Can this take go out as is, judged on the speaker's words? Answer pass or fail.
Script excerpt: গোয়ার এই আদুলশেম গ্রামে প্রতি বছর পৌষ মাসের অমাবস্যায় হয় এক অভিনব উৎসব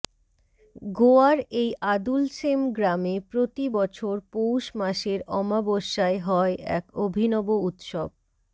pass